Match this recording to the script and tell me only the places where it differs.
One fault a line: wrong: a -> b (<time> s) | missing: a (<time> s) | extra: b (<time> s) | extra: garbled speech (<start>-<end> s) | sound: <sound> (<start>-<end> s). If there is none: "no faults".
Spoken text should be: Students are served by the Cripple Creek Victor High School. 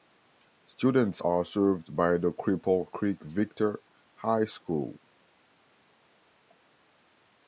no faults